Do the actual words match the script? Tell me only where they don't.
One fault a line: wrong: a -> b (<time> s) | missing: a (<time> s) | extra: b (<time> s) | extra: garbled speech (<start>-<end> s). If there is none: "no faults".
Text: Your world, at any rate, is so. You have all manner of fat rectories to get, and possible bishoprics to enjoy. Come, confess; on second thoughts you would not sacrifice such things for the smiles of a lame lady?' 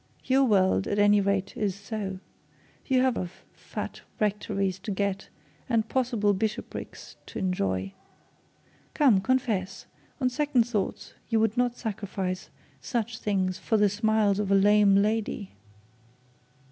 missing: all manner (3.2 s)